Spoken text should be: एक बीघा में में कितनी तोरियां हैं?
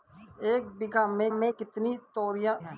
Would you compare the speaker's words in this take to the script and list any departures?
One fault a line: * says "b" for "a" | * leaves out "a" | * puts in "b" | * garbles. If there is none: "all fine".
all fine